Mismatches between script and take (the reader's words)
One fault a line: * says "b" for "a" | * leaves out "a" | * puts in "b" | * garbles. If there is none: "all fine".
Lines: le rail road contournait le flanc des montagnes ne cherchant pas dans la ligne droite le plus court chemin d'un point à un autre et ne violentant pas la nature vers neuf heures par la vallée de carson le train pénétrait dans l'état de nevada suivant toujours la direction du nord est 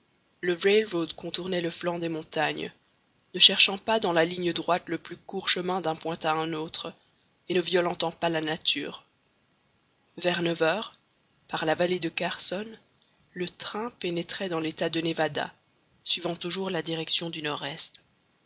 all fine